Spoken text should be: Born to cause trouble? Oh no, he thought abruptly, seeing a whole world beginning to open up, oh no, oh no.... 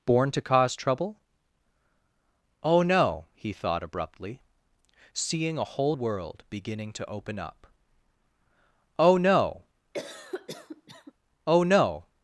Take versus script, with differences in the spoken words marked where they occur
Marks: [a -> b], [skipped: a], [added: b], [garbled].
Born to cause trouble? Oh no, he thought abruptly, seeing a whole world beginning to open up, oh no, oh no....